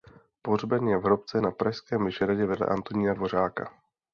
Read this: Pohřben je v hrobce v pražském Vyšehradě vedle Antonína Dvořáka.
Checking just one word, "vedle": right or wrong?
right